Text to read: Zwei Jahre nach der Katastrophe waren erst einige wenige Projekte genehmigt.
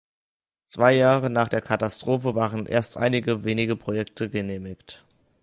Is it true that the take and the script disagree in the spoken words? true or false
false